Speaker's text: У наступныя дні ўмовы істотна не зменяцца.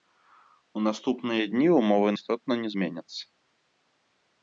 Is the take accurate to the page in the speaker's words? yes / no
yes